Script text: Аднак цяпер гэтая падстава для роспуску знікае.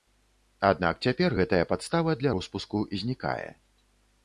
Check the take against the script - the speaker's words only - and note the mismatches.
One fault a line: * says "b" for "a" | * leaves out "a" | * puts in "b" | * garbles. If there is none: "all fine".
all fine